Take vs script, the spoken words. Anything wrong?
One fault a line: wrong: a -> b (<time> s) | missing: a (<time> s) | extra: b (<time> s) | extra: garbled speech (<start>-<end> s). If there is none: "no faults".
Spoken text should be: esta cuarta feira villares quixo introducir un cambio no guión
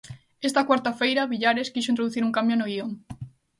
no faults